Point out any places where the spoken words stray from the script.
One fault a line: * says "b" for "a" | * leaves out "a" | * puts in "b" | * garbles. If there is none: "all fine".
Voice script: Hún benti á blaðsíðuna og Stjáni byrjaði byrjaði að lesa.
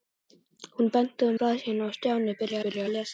all fine